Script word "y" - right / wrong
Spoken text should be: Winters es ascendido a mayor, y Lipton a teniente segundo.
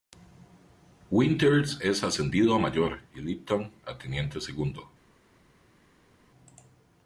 right